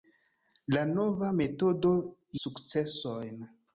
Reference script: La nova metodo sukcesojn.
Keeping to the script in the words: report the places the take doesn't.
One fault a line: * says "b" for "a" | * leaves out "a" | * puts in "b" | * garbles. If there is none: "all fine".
all fine